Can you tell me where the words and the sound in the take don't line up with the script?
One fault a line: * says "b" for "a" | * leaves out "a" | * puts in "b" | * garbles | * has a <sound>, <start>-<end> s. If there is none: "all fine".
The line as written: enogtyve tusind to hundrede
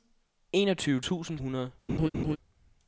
* leaves out "to"
* has a laugh, 1.9-2.4 s